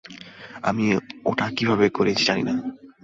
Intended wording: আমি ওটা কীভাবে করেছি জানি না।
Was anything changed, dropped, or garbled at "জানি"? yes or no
no